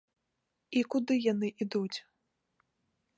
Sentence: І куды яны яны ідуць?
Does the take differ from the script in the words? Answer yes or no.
yes